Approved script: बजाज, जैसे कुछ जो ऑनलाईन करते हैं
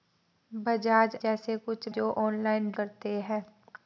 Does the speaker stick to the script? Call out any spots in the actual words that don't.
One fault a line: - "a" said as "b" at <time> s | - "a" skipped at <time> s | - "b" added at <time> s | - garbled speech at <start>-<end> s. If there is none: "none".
none